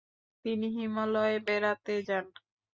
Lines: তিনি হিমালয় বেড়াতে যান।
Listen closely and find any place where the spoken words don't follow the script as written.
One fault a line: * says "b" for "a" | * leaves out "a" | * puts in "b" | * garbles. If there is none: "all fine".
all fine